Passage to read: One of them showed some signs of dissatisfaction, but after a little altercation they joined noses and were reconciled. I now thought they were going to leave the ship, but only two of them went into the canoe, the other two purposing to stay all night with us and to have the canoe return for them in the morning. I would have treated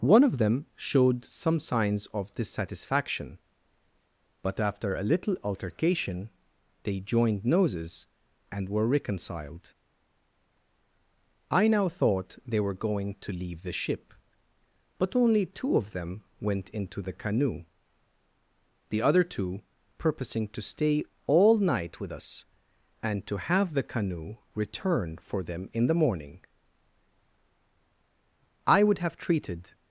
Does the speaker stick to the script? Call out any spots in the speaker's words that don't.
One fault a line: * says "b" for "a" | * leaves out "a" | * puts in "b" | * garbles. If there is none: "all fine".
all fine